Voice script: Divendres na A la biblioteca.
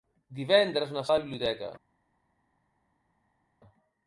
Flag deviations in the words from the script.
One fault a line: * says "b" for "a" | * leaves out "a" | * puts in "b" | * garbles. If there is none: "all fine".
all fine